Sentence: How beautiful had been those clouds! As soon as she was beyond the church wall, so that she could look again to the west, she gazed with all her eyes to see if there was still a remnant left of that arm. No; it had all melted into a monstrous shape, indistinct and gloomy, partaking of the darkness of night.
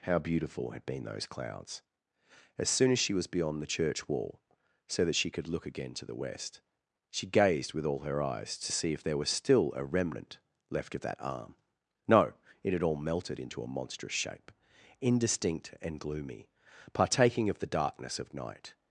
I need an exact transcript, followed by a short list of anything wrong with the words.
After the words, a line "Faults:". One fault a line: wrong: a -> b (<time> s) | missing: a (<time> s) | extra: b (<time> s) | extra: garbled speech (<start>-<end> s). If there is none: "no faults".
How beautiful had been those clouds! As soon as she was beyond the church wall, so that she could look again to the west, she gazed with all her eyes to see if there was still a remnant left of that arm. No; it had all melted into a monstrous shape, indistinct and gloomy, partaking of the darkness of night.
Faults:
no faults